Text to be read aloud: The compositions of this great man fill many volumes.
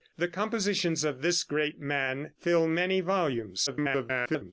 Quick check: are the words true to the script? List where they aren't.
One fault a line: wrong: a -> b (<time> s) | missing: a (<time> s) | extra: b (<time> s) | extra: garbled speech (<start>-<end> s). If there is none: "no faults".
extra: garbled speech (3.7-4.5 s)